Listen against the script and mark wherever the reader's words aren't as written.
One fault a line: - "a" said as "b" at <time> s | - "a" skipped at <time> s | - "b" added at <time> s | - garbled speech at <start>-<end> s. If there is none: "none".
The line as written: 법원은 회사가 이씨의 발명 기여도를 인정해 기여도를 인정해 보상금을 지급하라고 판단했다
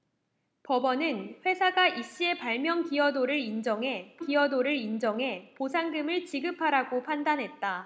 none